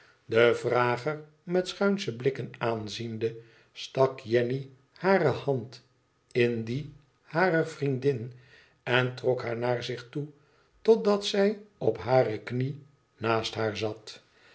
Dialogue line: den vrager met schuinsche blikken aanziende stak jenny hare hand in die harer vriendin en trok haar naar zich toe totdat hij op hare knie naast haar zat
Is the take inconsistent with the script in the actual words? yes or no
yes